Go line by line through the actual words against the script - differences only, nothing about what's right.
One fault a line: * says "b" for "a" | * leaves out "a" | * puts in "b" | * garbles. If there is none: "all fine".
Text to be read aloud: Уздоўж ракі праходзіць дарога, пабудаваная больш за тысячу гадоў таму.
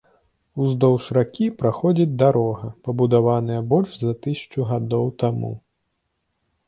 all fine